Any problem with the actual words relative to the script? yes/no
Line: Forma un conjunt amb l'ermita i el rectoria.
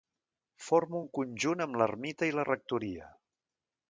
yes